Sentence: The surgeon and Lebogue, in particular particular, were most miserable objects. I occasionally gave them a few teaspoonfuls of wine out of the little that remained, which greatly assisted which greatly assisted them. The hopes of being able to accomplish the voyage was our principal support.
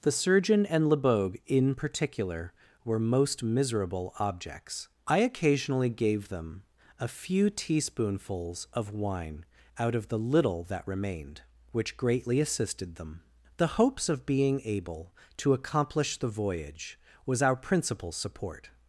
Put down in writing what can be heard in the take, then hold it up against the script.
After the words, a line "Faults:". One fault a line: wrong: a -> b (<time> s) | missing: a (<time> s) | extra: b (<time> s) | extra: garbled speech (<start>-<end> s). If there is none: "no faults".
The surgeon and Lebogue, in particular, were most miserable objects. I occasionally gave them a few teaspoonfuls of wine out of the little that remained, which greatly assisted them. The hopes of being able to accomplish the voyage was our principal support.
Faults:
missing: particular (2.5 s)
missing: which greatly assisted (13.0 s)